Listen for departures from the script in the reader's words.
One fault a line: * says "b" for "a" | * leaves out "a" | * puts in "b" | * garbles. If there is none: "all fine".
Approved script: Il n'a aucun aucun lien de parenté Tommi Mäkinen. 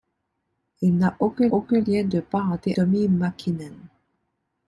all fine